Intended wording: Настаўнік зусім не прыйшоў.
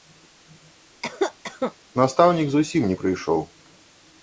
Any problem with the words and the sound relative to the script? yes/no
yes